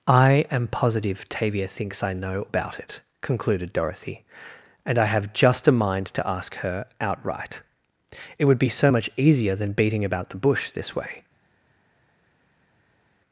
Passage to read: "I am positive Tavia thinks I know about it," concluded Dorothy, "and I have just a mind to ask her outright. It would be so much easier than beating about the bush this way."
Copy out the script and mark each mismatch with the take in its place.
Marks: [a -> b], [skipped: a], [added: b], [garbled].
"I am positive Tavia thinks I know about it," concluded Dorothy, "and I have just a mind to ask her outright. It would be so much easier than beating about the bush this way."